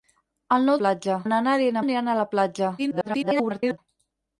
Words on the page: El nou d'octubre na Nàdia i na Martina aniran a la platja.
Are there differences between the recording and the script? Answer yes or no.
yes